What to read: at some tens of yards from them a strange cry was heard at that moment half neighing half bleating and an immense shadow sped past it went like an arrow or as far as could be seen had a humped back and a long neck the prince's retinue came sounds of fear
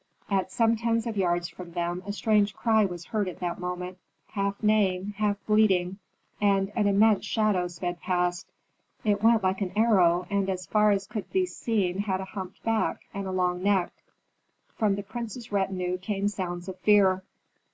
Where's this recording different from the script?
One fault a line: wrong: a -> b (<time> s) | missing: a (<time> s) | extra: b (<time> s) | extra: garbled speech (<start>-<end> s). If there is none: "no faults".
wrong: or -> and (10.3 s)
extra: from (14.7 s)